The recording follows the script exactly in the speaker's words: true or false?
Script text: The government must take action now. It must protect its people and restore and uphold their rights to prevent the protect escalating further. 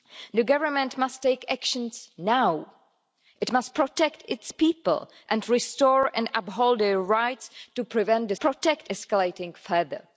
true